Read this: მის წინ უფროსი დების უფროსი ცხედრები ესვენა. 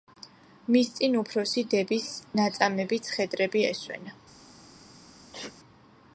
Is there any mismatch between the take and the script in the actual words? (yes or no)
yes